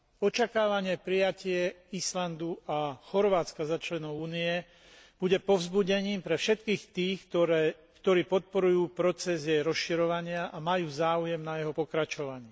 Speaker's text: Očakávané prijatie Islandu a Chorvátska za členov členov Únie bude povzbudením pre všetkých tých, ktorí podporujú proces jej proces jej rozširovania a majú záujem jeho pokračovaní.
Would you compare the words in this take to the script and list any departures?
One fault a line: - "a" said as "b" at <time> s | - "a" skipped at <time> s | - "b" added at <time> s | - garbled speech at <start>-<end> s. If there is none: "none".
- "členov" skipped at 4.2 s
- "proces jej" skipped at 9.6 s
- "na" added at 11.4 s